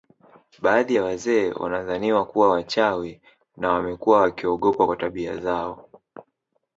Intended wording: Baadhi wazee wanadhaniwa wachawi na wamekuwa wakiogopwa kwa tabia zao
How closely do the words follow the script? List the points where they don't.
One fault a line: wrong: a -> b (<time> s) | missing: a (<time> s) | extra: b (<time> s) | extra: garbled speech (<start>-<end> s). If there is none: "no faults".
extra: ya (0.9 s)
extra: kuwa (2.3 s)